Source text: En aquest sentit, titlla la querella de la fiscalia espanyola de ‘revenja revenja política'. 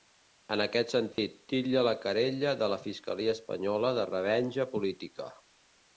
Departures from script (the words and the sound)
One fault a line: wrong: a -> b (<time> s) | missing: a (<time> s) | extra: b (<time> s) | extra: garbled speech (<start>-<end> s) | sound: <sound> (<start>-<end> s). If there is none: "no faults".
sound: dropout (1.1-1.2 s)
missing: revenja (4.7 s)